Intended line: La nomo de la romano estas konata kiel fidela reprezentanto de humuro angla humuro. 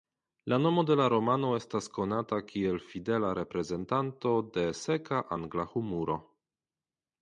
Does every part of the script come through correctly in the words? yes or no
no